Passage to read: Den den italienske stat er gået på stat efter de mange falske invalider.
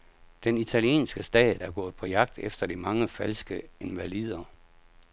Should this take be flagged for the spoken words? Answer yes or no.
yes